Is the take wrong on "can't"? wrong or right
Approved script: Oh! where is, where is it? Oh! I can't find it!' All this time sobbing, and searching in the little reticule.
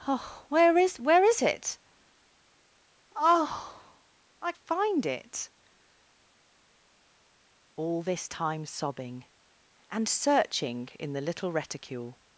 wrong